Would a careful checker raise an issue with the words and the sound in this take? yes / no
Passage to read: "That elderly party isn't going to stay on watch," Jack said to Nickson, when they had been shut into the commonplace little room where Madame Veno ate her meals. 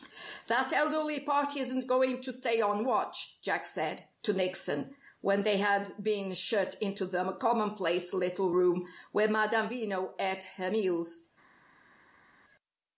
no